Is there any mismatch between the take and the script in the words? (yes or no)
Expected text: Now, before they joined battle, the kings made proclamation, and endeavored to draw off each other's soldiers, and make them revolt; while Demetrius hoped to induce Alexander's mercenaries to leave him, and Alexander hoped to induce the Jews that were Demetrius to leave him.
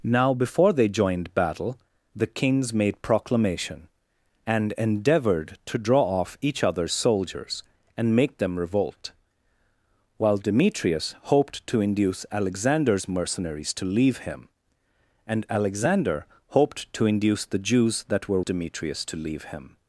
no